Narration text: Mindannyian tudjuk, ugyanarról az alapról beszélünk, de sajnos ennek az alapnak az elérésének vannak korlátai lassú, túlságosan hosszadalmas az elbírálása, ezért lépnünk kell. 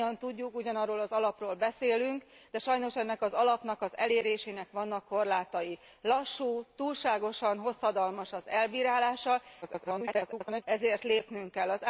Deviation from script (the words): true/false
true